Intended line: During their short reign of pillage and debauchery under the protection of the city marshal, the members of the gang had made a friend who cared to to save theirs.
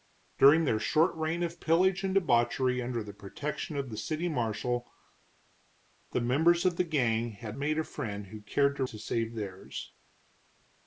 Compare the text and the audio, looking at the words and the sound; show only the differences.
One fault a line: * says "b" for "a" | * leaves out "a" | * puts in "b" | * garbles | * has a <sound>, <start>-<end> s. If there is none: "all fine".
all fine